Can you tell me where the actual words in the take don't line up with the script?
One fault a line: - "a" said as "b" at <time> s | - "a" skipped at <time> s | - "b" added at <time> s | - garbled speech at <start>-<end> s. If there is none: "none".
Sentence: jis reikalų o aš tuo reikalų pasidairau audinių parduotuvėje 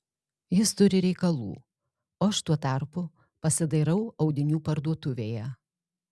- "turi" added at 0.8 s
- "reikalų" said as "tarpu" at 2.7 s